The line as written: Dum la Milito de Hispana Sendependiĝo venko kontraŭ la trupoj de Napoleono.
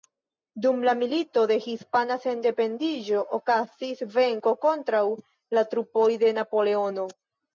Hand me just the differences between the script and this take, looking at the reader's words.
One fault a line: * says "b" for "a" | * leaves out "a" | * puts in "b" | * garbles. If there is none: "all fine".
* puts in "okazis"